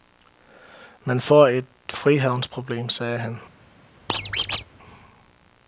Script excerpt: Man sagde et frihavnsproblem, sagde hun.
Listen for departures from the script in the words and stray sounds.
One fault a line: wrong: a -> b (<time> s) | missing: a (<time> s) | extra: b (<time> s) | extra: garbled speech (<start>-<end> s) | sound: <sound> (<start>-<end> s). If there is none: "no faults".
wrong: sagde -> får (1.2 s)
wrong: hun -> han (3.2 s)
sound: squeak (4.1-4.6 s)